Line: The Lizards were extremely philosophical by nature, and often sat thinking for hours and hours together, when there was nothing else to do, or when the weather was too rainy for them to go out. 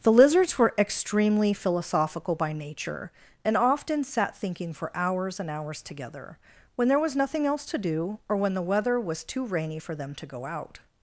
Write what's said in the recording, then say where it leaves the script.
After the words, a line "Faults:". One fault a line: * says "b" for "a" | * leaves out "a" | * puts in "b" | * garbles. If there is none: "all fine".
The Lizards were extremely philosophical by nature, and often sat thinking for hours and hours together, when there was nothing else to do, or when the weather was too rainy for them to go out.
Faults:
all fine